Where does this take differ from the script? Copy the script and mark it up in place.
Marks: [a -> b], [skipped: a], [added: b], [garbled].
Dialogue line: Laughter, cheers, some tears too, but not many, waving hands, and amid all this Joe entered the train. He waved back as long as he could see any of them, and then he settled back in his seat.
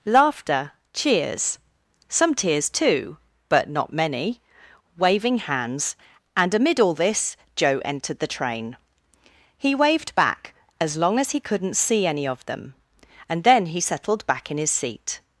Laughter, cheers, some tears too, but not many, waving hands, and amid all this Joe entered the train. He waved back as long as he [could -> couldn't] see any of them, and then he settled back in his seat.